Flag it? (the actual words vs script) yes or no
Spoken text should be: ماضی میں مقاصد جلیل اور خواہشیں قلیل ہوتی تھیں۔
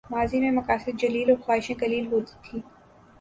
no